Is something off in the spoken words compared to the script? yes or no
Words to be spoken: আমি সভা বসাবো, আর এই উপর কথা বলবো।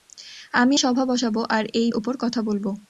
no